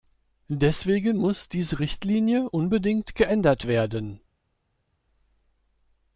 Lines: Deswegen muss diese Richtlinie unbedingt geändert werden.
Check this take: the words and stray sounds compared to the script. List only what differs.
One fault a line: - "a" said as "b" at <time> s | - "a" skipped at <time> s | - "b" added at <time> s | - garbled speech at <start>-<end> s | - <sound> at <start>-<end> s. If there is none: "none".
none